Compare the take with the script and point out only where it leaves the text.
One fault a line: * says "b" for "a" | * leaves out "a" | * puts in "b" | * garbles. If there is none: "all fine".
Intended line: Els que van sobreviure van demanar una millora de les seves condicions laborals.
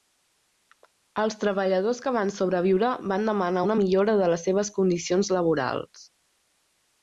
* puts in "treballadors"